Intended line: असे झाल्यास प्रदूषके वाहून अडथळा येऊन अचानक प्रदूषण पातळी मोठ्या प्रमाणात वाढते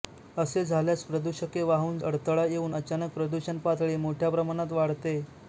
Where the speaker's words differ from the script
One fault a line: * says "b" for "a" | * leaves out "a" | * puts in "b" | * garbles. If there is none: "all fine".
all fine